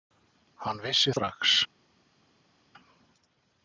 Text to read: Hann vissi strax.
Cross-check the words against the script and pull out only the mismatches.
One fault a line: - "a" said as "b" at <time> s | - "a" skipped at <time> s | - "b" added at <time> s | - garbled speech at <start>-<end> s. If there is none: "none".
none